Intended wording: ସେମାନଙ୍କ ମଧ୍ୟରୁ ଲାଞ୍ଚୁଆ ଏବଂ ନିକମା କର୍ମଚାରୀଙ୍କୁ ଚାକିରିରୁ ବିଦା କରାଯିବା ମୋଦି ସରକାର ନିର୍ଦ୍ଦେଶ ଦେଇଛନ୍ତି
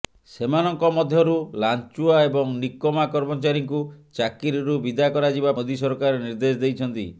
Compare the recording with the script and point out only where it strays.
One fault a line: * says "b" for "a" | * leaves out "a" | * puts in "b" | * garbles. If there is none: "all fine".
all fine